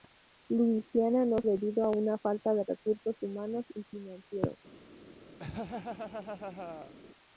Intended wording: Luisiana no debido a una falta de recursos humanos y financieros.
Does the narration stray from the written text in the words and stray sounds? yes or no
yes